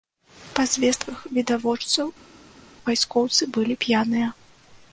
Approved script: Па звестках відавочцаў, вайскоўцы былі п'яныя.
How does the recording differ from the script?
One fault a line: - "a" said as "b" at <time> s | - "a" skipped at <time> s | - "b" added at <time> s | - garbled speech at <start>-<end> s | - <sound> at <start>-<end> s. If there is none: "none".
none